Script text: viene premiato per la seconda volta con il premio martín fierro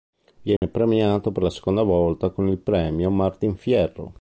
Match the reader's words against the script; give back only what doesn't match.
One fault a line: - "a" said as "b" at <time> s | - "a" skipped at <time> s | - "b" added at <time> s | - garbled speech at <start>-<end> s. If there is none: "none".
none